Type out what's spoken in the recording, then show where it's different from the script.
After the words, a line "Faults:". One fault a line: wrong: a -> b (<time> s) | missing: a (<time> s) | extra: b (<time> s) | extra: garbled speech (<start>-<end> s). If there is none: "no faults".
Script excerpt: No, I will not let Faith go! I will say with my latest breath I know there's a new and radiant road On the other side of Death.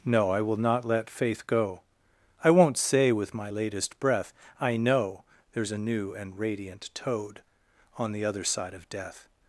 No, I will not let Faith go! I won't say with my latest breath I know there's a new and radiant toad On the other side of Death.
Faults:
wrong: will -> won't (2.5 s)
wrong: road -> toad (6.9 s)